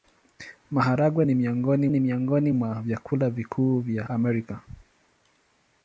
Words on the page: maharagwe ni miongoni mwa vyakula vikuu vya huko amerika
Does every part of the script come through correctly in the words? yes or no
no